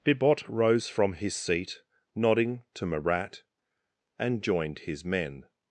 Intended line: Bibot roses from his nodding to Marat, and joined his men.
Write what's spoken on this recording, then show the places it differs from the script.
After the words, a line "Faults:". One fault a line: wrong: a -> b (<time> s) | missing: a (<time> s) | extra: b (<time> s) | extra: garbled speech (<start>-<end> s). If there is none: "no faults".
Bibot rose from his seat, nodding to Marat, and joined his men.
Faults:
wrong: roses -> rose (0.5 s)
extra: seat (1.4 s)